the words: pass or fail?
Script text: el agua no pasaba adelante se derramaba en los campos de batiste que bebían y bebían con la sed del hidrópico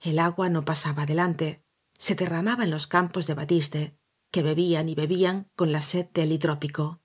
pass